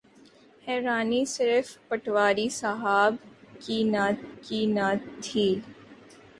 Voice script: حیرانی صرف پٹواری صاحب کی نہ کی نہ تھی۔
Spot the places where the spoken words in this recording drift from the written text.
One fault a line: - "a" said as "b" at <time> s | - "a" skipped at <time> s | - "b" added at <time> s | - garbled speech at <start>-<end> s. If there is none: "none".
none